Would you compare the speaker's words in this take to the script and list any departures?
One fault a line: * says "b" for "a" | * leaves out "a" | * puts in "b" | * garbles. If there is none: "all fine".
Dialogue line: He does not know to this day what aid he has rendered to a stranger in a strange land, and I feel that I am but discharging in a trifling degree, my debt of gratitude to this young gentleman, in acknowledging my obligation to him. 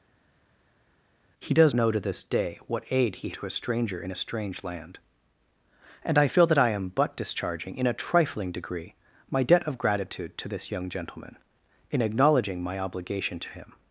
* leaves out "not"
* leaves out "has rendered"